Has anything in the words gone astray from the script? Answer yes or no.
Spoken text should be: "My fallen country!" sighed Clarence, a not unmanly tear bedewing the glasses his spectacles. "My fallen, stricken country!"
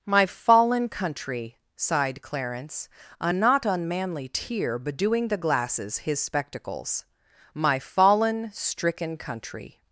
no